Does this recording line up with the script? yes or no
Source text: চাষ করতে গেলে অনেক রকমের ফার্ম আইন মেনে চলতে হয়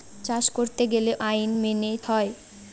no